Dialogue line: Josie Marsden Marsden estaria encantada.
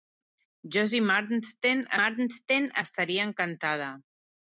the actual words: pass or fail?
pass